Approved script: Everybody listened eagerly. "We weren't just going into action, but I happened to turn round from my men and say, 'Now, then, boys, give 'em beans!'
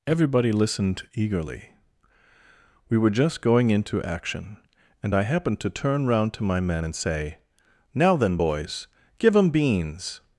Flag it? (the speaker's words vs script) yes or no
yes